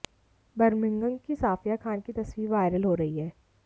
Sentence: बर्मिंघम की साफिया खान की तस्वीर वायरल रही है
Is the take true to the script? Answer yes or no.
no